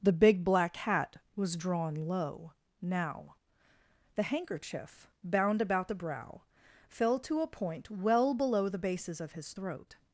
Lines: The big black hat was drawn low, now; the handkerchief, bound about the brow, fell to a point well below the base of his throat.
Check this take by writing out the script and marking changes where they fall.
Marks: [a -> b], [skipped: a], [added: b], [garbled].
The big black hat was drawn low, now; the handkerchief, bound about the brow, fell to a point well below the [base -> bases] of his throat.